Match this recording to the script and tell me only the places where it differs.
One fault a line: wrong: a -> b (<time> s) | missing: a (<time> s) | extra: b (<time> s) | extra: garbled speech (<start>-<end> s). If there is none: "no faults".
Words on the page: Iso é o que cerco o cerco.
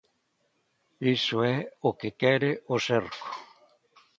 wrong: cerco -> quere (2.2 s)